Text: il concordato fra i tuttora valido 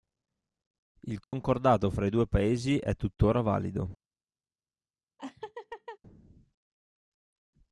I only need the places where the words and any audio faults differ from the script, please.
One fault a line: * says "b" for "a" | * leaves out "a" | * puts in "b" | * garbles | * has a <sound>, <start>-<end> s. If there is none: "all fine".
* has a dropout, 1.2-1.3 s
* puts in "due paesi è"
* has a laugh, 5.2-6.0 s